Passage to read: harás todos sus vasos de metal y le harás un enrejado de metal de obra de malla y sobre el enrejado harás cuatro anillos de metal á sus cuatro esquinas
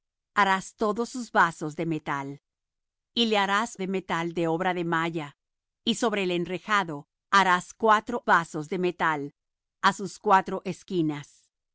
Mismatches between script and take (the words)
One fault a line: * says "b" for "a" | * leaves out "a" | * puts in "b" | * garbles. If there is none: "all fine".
* leaves out "un enrejado"
* says "vasos" for "anillos"